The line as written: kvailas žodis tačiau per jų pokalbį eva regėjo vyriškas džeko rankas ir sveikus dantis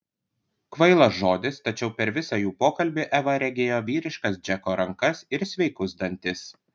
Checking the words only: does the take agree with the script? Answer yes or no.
no